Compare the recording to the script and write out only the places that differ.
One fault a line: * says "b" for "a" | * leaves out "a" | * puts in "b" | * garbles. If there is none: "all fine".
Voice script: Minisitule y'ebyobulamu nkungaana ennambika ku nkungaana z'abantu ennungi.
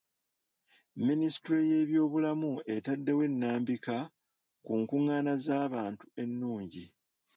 * says "etaddewo" for "nkungaana"